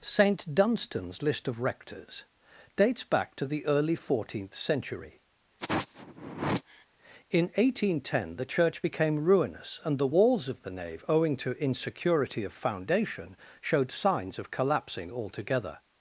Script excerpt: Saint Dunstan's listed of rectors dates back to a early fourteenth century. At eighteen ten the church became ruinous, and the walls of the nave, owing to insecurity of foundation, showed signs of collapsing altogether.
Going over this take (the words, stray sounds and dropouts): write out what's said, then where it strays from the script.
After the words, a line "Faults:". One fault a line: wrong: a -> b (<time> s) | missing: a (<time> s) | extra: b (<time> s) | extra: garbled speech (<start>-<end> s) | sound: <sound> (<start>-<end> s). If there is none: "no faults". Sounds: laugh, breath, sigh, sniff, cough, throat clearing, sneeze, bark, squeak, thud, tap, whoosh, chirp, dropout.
Saint Dunstan's list of rectors dates back to the early fourteenth century. In eighteen ten the church became ruinous, and the walls of the nave, owing to insecurity of foundation, showed signs of collapsing altogether.
Faults:
wrong: listed -> list (1.2 s)
wrong: a -> the (3.5 s)
sound: sigh (5.6-6.9 s)
wrong: At -> In (7.3 s)